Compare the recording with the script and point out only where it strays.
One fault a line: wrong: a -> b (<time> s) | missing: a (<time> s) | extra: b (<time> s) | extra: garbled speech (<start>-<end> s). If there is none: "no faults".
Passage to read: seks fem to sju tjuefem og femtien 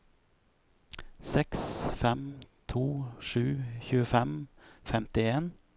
no faults